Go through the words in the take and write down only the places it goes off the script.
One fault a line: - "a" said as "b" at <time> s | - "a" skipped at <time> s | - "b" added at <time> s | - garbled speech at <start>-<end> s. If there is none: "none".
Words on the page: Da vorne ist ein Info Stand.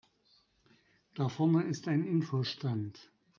none